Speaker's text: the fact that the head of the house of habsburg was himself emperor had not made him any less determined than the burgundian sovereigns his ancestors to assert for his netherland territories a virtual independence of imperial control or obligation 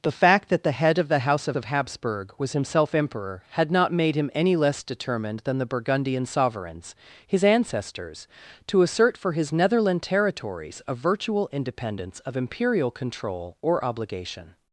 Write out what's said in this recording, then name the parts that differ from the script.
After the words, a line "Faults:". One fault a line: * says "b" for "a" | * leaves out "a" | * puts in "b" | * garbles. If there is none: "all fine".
the fact that the head of the house of of habsburg was himself emperor had not made him any less determined than the burgundian sovereigns his ancestors to assert for his netherland territories a virtual independence of imperial control or obligation
Faults:
* puts in "of"